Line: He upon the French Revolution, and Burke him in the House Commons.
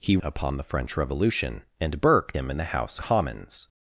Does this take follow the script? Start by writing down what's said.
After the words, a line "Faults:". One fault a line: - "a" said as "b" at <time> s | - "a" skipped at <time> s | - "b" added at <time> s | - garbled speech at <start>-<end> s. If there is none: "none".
He upon the French Revolution, and Burke him in the House Commons.
Faults:
none